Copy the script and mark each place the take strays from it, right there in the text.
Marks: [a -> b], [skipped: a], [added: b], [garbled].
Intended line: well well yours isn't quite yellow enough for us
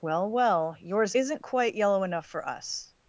well well yours isn't quite yellow enough for us